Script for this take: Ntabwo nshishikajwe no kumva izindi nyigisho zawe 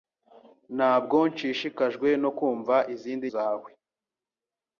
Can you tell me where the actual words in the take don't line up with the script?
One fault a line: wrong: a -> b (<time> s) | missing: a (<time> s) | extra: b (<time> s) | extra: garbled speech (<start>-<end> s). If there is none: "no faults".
missing: nyigisho (3.3 s)